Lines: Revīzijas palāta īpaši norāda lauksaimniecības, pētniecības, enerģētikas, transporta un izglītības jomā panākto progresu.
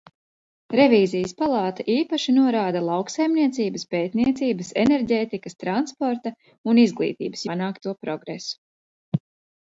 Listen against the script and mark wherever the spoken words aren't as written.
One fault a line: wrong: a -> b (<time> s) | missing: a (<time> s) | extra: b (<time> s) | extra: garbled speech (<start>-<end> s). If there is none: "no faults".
missing: jomā (7.5 s)